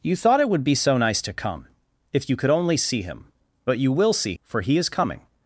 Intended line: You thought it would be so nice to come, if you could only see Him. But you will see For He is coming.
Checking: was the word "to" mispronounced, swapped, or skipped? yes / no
no